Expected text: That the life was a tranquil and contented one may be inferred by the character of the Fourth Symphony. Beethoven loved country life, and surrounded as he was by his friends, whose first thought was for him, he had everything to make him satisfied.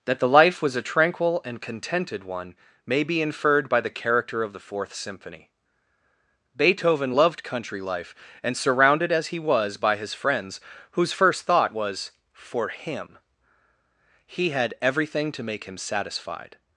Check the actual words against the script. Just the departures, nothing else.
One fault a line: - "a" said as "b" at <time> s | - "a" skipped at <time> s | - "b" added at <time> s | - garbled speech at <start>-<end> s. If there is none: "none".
none